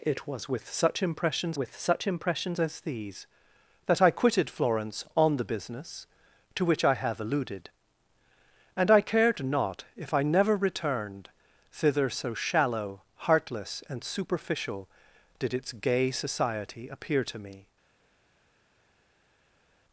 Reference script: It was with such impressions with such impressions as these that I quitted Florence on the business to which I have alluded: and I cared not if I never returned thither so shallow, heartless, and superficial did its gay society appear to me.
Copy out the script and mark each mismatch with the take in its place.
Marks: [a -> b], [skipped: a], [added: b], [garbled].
It was with such impressions with such impressions as these that I quitted Florence on the business to which I have alluded: and I cared not if I never returned thither so shallow, heartless, and superficial did its gay society appear to me.